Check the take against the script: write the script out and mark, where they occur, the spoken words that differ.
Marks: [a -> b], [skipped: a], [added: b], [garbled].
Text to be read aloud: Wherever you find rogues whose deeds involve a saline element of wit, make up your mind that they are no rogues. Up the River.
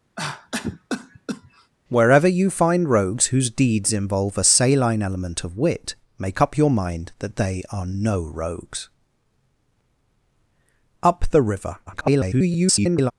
Wherever you find rogues whose deeds involve a saline element of wit, make up your mind that they are no rogues. Up the River. [garbled]